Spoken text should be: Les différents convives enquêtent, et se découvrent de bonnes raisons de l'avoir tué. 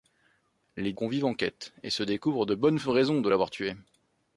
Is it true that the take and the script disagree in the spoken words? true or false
true